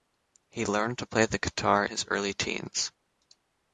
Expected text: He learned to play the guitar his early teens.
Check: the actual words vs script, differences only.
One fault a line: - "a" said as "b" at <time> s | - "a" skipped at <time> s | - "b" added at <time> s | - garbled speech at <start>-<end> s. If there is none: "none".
none